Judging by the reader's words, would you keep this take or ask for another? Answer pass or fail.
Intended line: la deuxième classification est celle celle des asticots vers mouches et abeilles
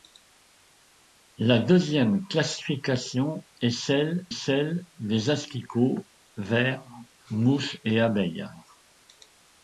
pass